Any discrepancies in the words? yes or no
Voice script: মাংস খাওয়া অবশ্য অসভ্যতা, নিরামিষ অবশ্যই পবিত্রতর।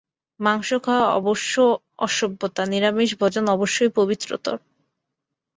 yes